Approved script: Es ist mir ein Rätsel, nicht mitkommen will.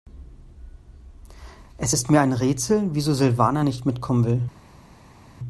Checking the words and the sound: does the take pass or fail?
fail